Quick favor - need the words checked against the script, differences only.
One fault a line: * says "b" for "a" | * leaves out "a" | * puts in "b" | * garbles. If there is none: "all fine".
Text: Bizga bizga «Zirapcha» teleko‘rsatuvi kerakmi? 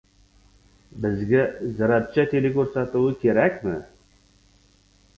* leaves out "bizga"